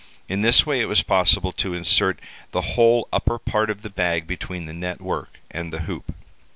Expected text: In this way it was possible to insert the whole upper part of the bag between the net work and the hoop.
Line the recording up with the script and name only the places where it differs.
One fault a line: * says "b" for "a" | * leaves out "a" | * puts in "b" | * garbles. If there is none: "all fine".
all fine